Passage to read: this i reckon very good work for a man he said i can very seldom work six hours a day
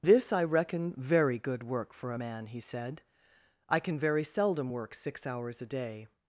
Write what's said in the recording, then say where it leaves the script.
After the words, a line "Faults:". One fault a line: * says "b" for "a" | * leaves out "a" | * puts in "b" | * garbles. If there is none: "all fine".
this i reckon very good work for a man he said i can very seldom work six hours a day
Faults:
all fine